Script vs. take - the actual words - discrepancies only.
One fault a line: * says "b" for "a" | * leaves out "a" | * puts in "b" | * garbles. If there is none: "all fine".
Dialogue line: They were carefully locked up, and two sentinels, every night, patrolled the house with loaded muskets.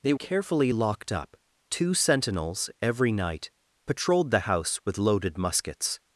* leaves out "were"
* leaves out "and"